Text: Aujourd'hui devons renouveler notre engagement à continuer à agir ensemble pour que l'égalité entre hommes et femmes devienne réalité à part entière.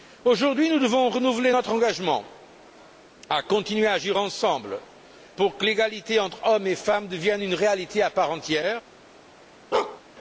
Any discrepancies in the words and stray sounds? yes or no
yes